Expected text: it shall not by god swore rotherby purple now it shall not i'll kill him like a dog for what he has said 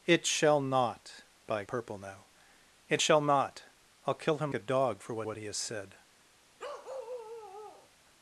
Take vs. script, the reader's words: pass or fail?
fail